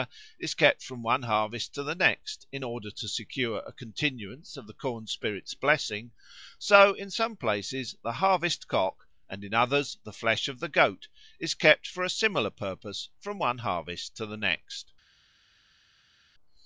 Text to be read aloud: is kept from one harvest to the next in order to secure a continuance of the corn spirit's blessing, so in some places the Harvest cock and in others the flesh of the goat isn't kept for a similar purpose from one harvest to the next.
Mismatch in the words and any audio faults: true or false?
true